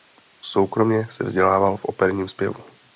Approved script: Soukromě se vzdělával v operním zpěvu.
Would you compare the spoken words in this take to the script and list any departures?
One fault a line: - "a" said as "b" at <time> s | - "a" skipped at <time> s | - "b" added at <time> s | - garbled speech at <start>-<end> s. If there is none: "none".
none